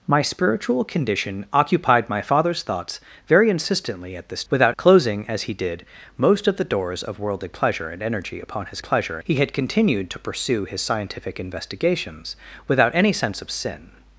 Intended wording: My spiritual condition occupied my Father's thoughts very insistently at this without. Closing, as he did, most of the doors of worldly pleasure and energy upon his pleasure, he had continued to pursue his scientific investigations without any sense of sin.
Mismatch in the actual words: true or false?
false